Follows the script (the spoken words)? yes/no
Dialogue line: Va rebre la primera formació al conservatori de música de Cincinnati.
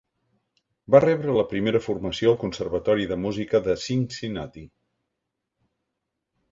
yes